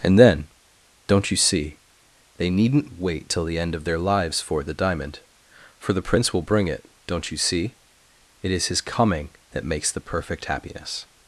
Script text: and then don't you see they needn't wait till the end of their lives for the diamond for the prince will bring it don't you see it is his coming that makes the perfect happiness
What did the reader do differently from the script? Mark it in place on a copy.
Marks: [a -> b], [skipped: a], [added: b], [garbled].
and then don't you see they needn't wait till the end of their lives for the diamond for the prince will bring it don't you see it is his coming that makes the perfect happiness